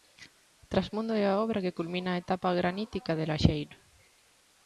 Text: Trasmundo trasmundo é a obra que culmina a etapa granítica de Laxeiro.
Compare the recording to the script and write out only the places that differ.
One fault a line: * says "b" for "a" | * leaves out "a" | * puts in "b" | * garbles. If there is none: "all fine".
* leaves out "trasmundo"